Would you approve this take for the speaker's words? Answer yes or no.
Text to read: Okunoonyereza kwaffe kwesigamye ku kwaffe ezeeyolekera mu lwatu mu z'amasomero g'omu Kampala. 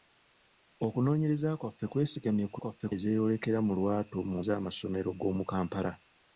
yes